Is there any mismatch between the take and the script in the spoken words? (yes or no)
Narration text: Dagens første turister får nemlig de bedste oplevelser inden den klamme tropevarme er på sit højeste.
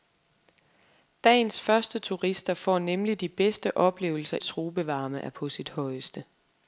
yes